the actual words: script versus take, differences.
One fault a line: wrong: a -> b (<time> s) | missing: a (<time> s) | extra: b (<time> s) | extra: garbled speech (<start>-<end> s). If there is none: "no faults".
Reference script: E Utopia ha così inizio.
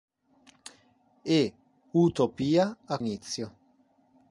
missing: così (3.0 s)